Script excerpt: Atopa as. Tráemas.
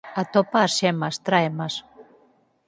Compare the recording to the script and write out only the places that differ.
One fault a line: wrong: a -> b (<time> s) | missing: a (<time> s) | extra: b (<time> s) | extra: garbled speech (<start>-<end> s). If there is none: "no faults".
extra: xemas (0.8 s)